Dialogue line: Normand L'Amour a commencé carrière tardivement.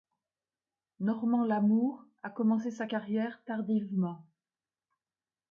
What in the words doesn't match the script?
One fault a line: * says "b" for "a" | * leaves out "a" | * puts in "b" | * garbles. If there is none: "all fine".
* puts in "sa"